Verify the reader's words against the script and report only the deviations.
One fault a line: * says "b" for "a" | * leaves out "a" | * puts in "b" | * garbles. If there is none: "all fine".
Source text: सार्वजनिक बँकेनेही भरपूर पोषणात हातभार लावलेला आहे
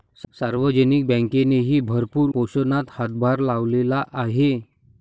all fine